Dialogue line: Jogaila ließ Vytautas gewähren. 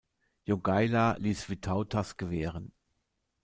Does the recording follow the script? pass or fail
pass